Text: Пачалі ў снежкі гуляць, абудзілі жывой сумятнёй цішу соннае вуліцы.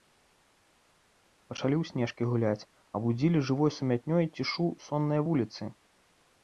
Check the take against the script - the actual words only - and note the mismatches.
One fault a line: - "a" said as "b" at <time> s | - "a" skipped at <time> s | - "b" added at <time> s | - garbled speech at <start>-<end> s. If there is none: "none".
none